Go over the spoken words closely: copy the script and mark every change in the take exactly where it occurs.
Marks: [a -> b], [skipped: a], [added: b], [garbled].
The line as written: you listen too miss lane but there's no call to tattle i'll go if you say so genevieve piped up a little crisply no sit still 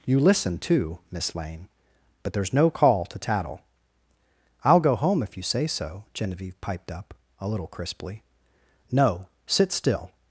you listen too miss lane but there's no call to tattle i'll go [added: home] if you say so genevieve piped up a little crisply no sit still